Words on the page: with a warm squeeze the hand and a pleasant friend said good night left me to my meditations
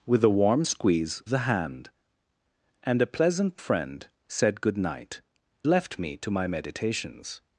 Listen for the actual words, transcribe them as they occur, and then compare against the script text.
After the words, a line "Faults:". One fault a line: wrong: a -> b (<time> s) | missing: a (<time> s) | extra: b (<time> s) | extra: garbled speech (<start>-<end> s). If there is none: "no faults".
with a warm squeeze the hand and a pleasant friend said good night left me to my meditations
Faults:
no faults